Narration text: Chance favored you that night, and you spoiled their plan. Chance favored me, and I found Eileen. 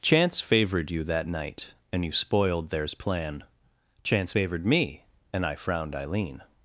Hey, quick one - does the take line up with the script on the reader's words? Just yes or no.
no